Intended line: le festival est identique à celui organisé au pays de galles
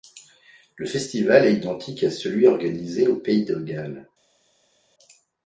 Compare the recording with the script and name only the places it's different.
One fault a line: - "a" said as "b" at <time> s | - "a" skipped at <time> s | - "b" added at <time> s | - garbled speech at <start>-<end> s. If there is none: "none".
none